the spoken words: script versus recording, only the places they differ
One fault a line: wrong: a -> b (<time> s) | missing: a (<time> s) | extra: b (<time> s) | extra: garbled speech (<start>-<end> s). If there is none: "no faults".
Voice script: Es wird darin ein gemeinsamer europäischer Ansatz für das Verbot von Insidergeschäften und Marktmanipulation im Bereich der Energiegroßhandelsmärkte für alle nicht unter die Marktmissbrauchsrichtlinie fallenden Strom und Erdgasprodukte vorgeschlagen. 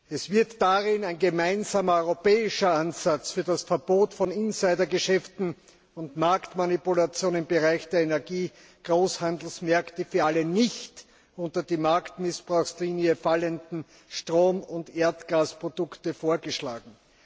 no faults